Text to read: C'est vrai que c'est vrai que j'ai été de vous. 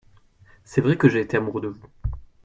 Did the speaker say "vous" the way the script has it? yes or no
yes